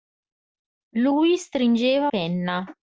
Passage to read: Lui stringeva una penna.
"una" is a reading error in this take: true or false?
true